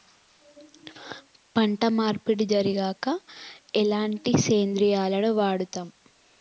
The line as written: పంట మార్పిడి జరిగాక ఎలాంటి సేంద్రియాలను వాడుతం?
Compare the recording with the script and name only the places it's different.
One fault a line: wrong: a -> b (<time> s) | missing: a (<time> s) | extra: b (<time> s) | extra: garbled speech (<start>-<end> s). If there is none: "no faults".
no faults